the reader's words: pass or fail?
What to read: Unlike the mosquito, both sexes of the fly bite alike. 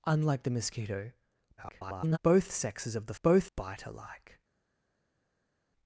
fail